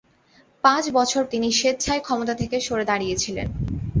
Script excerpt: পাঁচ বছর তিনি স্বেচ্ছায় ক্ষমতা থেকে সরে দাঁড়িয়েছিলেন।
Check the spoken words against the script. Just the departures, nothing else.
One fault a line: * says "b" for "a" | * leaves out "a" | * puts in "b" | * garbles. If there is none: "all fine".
all fine